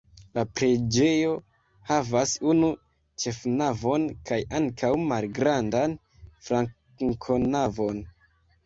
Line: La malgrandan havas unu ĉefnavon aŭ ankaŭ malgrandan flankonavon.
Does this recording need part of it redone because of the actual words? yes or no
yes